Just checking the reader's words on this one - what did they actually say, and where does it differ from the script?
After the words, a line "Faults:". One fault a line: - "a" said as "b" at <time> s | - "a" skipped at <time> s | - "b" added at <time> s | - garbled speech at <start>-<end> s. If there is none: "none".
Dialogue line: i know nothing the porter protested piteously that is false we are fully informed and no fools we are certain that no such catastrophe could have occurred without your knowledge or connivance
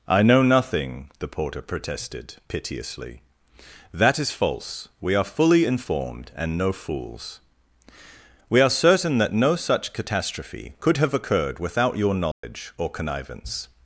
i know nothing the porter protested piteously that is false we are fully informed and no fools we are certain that no such catastrophe could have occurred without your knowledge or connivance
Faults:
none